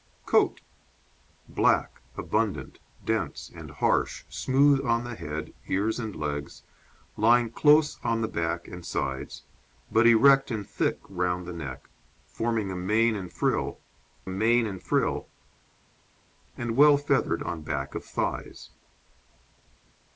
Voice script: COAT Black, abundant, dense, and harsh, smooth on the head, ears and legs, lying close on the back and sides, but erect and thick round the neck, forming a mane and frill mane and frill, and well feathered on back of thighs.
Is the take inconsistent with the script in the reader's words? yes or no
no